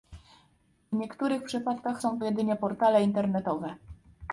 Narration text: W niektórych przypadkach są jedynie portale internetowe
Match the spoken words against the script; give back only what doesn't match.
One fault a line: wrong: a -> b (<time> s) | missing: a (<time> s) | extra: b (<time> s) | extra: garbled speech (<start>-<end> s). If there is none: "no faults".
no faults